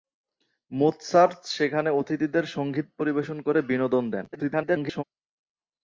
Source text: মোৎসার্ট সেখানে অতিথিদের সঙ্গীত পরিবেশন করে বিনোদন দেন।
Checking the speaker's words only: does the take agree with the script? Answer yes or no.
no